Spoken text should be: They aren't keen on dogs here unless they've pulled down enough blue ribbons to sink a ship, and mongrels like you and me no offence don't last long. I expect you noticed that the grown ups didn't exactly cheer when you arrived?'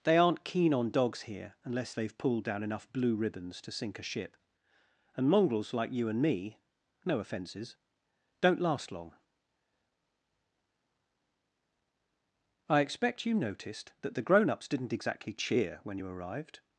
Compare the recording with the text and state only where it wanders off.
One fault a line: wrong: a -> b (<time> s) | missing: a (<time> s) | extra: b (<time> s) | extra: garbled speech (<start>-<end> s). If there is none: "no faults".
wrong: offence -> offences (7.2 s)